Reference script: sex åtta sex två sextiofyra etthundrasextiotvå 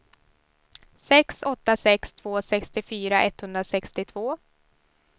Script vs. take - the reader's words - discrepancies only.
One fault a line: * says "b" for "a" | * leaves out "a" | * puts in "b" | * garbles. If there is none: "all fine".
all fine